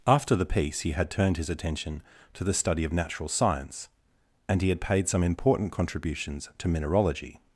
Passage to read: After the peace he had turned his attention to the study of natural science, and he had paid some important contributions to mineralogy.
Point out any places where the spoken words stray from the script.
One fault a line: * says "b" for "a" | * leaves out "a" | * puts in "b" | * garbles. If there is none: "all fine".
all fine